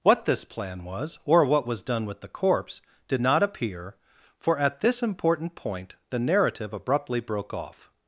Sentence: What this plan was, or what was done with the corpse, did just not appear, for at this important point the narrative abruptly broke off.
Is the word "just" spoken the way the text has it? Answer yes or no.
no